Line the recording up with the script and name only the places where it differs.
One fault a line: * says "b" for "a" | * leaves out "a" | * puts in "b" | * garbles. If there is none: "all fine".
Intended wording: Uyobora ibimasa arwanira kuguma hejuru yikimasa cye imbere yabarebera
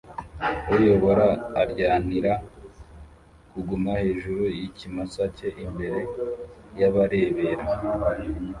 * leaves out "ibimasa"